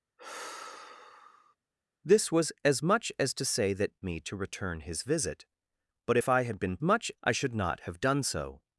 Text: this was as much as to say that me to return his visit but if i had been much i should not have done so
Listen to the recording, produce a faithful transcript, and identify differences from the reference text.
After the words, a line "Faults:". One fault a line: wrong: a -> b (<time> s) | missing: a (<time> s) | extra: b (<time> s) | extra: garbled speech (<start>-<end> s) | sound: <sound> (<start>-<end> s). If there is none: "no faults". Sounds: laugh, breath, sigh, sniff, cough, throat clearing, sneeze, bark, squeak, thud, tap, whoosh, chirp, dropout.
this was as much as to say that me to return his visit but if i had been much i should not have done so
Faults:
sound: sigh (0.2-1.6 s)